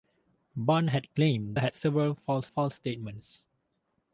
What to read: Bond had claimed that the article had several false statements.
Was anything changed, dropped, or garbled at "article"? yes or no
yes